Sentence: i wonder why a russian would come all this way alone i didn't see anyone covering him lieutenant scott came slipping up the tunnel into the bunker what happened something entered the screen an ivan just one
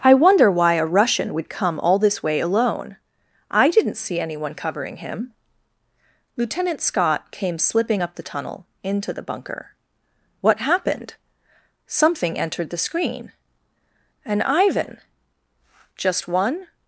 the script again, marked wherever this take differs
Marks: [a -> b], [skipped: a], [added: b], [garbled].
i wonder why a russian would come all this way alone i didn't see anyone covering him lieutenant scott came slipping up the tunnel into the bunker what happened something entered the screen an ivan just one